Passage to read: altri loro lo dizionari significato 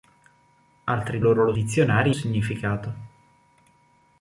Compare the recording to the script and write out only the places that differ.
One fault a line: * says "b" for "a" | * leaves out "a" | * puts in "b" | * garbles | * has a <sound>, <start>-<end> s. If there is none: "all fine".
all fine